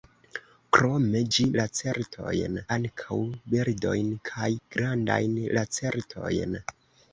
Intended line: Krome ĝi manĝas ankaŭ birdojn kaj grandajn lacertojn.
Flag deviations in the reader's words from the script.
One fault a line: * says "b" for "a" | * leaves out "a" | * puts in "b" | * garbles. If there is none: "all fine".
* says "lacertojn" for "manĝas"